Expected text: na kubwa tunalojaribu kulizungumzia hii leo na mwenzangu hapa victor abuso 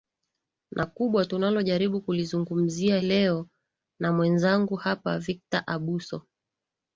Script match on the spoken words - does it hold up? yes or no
no